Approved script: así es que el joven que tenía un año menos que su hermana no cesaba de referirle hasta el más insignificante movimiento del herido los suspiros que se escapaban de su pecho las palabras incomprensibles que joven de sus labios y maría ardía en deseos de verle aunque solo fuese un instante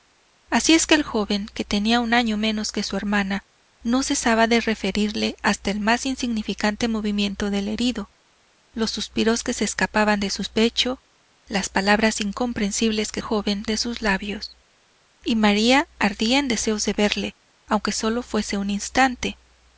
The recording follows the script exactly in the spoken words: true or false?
true